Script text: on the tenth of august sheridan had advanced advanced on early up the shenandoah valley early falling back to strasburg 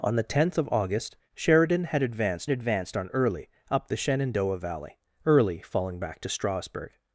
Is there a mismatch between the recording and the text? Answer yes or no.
no